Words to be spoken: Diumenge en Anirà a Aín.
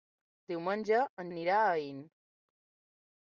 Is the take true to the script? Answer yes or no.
yes